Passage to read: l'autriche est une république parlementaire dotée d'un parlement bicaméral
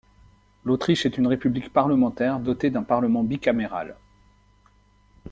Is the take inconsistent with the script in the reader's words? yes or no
no